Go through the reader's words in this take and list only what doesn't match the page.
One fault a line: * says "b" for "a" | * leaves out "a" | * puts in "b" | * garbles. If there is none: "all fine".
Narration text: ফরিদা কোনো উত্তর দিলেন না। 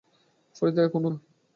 * leaves out "উত্তর দিলেন"